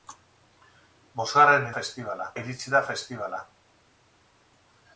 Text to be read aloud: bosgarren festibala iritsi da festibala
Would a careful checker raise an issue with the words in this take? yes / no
no